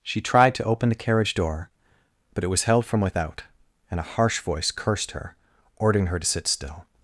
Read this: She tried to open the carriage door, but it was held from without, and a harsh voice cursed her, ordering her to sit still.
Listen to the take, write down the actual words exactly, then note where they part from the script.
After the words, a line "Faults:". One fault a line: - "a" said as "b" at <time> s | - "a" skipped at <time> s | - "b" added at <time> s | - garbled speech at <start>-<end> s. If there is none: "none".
She tried to open the carriage door, but it was held from without, and a harsh voice cursed her, ordering her to sit still.
Faults:
none